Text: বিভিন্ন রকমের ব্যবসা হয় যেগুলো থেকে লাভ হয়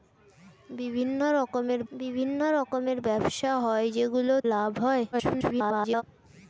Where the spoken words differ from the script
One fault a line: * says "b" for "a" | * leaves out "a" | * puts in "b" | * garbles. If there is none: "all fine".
* puts in "বিভিন্ন রকমের"
* leaves out "থেকে"
* garbles